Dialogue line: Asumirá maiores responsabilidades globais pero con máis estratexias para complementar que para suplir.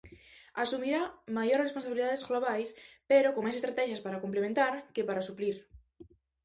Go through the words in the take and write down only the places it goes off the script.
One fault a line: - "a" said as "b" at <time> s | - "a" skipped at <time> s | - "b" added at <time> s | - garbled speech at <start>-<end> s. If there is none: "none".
none